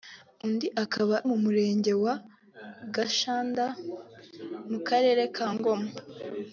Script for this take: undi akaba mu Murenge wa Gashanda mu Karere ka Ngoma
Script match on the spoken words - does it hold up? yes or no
yes